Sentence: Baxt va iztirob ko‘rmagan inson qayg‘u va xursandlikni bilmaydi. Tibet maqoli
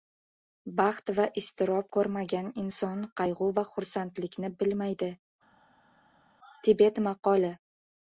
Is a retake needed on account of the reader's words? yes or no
no